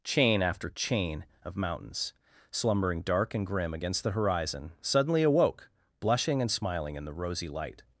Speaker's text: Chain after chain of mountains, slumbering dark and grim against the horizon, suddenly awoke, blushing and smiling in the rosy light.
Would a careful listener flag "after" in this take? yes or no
no